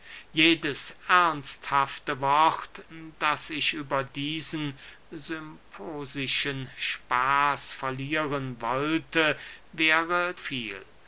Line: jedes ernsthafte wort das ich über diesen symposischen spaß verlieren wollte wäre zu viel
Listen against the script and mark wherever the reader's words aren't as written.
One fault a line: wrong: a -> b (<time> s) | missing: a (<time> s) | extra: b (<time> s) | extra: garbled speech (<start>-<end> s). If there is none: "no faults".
missing: zu (10.3 s)